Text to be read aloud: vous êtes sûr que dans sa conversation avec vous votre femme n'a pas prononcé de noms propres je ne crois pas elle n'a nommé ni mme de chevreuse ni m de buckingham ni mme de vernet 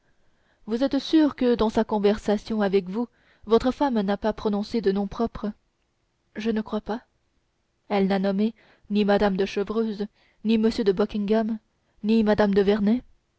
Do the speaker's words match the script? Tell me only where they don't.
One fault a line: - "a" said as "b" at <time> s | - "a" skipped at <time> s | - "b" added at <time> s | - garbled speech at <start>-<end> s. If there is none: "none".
none